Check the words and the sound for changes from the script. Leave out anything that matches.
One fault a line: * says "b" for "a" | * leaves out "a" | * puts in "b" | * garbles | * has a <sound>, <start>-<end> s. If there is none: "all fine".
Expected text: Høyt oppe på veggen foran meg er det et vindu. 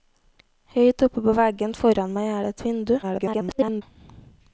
* garbles